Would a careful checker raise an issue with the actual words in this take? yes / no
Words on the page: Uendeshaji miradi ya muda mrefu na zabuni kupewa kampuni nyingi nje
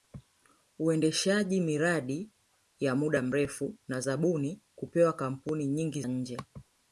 no